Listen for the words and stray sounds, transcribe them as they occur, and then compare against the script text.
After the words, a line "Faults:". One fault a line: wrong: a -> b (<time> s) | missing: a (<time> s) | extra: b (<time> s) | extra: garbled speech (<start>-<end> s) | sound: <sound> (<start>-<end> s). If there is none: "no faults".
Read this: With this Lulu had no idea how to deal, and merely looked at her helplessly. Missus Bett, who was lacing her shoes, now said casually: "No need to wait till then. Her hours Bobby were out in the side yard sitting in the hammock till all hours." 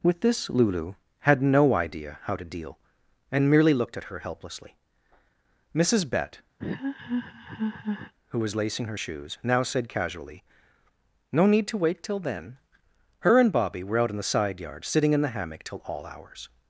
With this Lulu had no idea how to deal, and merely looked at her helplessly. Missus Bett, who was lacing her shoes, now said casually: "No need to wait till then. Her and Bobby were out in the side yard sitting in the hammock till all hours."
Faults:
sound: laugh (6.6-8.1 s)
wrong: hours -> and (13.4 s)